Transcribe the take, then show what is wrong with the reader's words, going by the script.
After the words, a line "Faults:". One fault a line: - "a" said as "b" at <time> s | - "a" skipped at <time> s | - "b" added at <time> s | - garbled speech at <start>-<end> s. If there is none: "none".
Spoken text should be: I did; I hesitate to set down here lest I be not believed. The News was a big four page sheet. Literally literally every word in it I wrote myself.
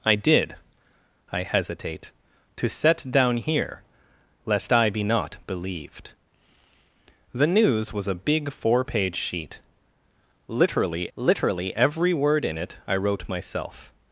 I did; I hesitate to set down here lest I be not believed. The News was a big four page sheet. Literally literally every word in it I wrote myself.
Faults:
none